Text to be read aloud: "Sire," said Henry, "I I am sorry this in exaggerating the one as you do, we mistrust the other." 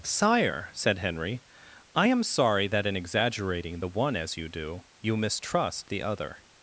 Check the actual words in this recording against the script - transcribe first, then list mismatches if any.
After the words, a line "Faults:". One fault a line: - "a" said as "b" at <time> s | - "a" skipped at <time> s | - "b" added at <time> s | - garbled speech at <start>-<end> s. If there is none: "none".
"Sire," said Henry, "I am sorry that in exaggerating the one as you do, you mistrust the other."
Faults:
- "I" skipped at 2.1 s
- "this" said as "that" at 2.7 s
- "we" said as "you" at 5.0 s